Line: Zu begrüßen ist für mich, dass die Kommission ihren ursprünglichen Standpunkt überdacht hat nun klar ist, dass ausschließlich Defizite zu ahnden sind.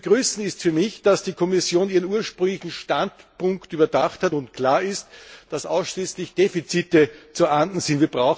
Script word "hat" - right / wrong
right